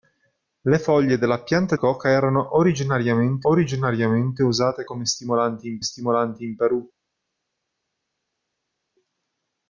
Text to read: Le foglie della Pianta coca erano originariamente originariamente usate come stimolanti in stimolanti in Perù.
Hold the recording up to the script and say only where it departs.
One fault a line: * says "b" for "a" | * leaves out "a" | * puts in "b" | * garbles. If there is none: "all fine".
all fine